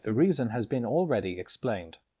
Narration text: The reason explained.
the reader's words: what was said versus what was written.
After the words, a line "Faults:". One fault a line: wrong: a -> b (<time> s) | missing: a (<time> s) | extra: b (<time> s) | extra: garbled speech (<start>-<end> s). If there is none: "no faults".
The reason has been already explained.
Faults:
extra: has been already (0.5 s)